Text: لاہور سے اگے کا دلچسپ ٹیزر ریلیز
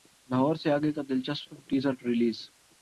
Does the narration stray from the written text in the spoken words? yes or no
no